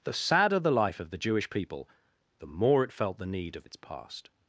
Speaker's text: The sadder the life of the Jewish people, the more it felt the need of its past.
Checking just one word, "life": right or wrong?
right